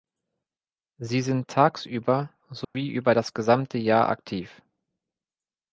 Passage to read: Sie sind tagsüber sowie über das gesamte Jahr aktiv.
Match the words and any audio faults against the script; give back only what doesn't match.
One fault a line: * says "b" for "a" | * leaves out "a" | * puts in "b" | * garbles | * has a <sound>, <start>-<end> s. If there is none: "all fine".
* has a dropout, 2.6-2.7 s